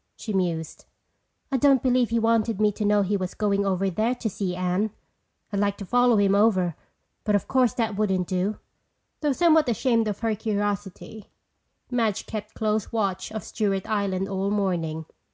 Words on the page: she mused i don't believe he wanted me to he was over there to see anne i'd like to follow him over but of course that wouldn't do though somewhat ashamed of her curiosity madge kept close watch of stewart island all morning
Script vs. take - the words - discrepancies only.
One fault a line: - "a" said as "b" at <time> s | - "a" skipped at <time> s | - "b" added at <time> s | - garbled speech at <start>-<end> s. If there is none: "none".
- "know" added at 2.8 s
- "going" added at 3.4 s